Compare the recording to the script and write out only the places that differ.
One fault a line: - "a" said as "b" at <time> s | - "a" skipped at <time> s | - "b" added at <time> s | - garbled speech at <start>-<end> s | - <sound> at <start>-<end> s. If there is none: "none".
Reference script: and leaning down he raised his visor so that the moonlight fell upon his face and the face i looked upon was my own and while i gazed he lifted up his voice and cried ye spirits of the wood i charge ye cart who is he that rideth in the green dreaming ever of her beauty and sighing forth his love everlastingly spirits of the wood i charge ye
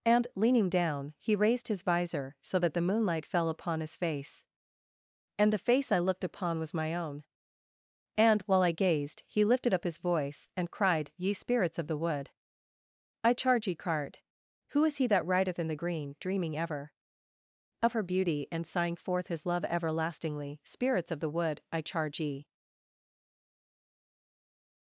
none